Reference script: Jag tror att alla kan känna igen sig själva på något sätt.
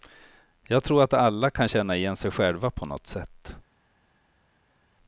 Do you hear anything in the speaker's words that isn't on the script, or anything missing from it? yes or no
no